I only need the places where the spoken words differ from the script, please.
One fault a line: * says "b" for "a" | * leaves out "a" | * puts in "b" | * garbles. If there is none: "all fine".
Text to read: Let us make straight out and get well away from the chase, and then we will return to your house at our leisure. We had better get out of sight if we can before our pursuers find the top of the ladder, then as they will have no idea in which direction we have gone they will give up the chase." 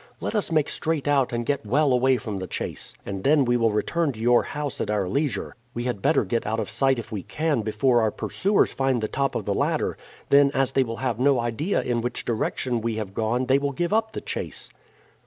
all fine